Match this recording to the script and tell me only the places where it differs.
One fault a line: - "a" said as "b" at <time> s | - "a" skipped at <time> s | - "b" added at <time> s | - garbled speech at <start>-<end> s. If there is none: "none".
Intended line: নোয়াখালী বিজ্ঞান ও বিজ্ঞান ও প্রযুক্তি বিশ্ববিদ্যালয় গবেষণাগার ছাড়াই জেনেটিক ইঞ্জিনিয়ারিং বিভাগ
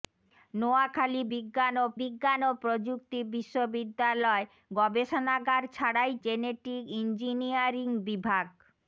none